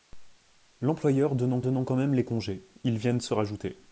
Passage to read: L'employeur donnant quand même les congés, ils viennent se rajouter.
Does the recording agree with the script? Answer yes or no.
no